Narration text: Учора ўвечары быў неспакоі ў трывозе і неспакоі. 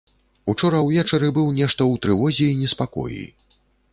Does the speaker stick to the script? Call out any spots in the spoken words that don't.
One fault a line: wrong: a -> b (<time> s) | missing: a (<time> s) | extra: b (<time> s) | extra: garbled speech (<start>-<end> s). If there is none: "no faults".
wrong: неспакоі -> нешта (1.6 s)